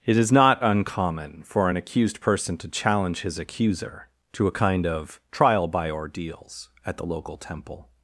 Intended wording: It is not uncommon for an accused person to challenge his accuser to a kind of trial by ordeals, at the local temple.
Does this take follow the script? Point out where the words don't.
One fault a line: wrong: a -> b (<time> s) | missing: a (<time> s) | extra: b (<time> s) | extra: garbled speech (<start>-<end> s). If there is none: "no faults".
no faults